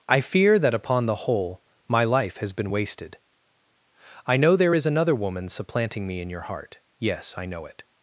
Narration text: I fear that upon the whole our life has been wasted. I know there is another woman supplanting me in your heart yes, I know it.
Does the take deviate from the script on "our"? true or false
true